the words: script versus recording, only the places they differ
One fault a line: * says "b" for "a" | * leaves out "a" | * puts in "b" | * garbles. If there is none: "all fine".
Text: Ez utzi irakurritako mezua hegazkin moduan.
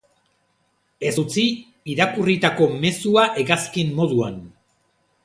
all fine